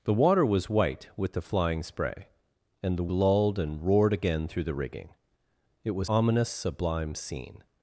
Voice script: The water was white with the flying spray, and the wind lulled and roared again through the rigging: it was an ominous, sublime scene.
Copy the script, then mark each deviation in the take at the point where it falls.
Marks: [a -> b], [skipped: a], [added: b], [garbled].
The water was white with the flying spray, and the [skipped: wind] lulled and roared again through the rigging: it was [skipped: an] ominous, sublime scene.